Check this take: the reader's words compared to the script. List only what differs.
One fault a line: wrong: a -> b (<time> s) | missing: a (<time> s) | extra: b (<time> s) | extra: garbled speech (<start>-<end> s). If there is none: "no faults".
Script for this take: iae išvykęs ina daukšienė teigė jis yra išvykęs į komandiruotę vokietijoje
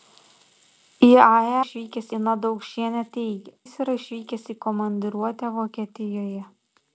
no faults